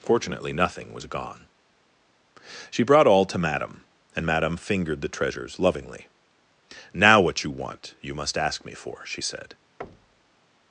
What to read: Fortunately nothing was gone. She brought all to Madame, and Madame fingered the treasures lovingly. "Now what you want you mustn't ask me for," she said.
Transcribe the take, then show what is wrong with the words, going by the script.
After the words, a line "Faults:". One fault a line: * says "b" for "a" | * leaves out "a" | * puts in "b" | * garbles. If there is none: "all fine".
Fortunately nothing was gone. She brought all to Madame, and Madame fingered the treasures lovingly. "Now what you want you must ask me for," she said.
Faults:
* says "must" for "mustn't"